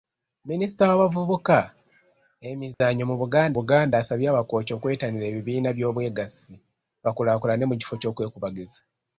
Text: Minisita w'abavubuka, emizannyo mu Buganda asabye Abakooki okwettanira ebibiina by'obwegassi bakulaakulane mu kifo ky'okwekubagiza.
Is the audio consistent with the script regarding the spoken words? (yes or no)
no